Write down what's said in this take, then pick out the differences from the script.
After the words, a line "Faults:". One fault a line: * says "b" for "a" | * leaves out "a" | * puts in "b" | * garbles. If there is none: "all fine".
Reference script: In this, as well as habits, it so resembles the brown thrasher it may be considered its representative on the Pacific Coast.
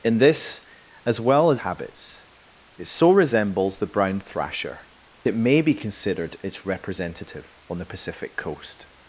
In this, as well as habits, it so resembles the brown thrasher it may be considered its representative on the Pacific Coast.
Faults:
all fine